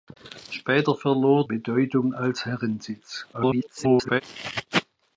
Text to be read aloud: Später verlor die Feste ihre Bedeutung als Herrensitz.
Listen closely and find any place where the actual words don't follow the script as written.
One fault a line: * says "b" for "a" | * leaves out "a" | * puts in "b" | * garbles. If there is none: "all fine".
* leaves out "die Feste ihre"
* garbles